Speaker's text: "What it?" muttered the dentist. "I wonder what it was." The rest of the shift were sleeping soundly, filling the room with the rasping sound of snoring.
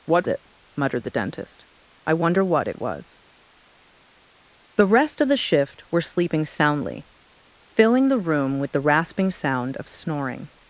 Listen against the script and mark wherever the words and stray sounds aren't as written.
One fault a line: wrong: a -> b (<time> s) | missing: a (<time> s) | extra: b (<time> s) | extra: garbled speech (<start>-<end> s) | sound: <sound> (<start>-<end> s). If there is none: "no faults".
no faults